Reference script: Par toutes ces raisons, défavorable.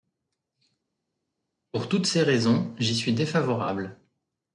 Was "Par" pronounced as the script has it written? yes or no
no